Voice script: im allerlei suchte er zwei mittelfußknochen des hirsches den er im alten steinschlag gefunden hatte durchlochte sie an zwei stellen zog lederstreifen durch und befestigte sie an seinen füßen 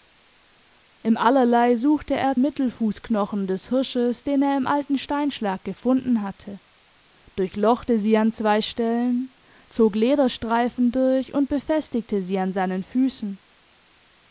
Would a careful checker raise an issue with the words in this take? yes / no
yes